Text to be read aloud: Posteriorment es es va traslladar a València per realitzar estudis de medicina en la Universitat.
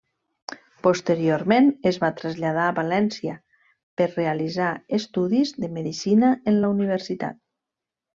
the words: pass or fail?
fail